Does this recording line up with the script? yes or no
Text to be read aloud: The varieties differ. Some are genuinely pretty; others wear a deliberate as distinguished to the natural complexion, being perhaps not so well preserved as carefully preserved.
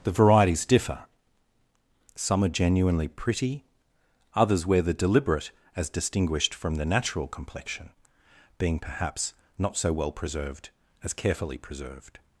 no